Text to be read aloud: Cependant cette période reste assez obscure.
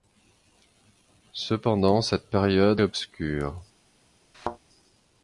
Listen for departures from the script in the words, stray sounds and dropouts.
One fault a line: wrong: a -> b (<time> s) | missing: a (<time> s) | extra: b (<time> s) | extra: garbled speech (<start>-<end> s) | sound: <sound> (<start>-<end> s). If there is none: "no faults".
missing: reste assez (2.8 s)
sound: thud (4.3-4.6 s)